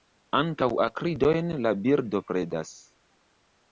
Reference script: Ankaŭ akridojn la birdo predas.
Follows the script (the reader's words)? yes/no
yes